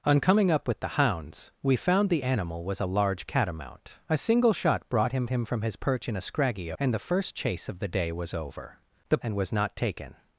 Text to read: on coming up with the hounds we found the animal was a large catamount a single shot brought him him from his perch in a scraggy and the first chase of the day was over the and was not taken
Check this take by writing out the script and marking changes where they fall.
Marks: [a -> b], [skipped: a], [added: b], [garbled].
on coming up with the hounds we found the animal was a large catamount a single shot brought him him from his perch in a scraggy and the first chase of the day was over the and was not taken